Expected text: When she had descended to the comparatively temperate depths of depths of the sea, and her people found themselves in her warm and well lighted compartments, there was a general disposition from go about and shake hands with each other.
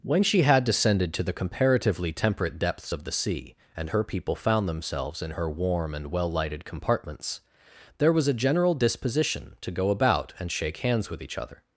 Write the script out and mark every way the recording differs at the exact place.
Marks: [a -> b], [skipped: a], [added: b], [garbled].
When she had descended to the comparatively temperate depths of [skipped: depths of] the sea, and her people found themselves in her warm and well lighted compartments, there was a general disposition [from -> to] go about and shake hands with each other.